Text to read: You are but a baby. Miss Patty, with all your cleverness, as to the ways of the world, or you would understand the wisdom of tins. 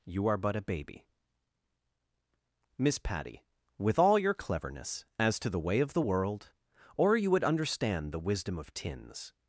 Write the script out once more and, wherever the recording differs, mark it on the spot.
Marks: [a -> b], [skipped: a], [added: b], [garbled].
You are but a baby. Miss Patty, with all your cleverness, as to the [ways -> way] of the world, or you would understand the wisdom of tins.